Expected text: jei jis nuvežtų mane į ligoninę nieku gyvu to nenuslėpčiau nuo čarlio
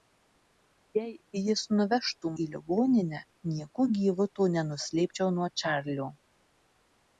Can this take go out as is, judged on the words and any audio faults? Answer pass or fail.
fail